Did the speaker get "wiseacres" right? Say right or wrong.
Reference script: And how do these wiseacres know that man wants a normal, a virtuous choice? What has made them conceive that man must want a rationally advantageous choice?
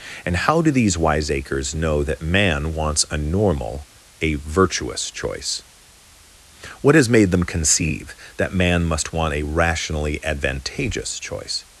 right